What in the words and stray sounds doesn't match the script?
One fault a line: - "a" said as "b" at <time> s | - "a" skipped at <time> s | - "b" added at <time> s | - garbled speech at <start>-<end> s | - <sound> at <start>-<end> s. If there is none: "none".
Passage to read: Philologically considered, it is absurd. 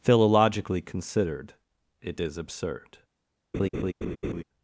- laugh at 3.5-4.4 s